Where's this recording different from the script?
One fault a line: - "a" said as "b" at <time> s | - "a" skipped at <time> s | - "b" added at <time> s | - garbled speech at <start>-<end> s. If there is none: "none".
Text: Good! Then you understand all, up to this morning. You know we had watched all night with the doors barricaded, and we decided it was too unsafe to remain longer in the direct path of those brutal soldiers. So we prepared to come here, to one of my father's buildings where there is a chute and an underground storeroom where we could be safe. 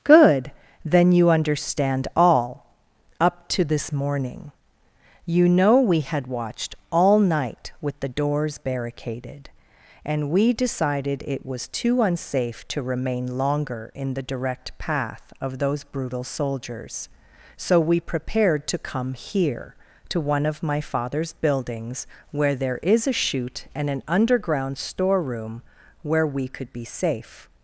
none